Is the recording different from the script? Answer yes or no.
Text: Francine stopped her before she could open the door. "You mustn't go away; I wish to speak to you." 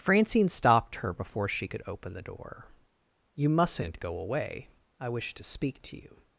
no